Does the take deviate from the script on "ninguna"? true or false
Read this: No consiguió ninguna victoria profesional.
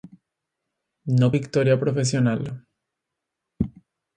true